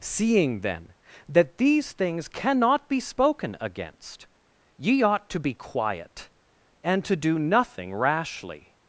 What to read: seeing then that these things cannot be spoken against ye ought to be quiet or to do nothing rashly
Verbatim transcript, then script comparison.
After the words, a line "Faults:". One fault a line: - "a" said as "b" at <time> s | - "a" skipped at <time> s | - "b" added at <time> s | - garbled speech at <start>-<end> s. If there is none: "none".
seeing then that these things cannot be spoken against ye ought to be quiet and to do nothing rashly
Faults:
- "or" said as "and" at 6.8 s